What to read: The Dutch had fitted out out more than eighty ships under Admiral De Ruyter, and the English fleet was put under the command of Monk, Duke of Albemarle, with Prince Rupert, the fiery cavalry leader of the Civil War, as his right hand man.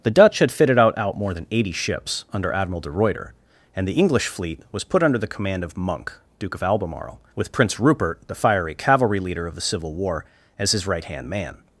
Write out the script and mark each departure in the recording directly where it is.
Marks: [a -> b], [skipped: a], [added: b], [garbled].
The Dutch had fitted out out more than eighty ships under Admiral De Ruyter, and the English fleet was put under the command of Monk, Duke of Albemarle, with Prince Rupert, the fiery cavalry leader of the Civil War, as his right hand man.